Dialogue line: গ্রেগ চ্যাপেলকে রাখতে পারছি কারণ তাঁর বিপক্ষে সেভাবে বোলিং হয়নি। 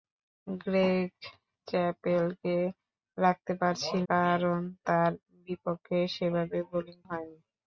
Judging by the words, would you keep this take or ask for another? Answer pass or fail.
pass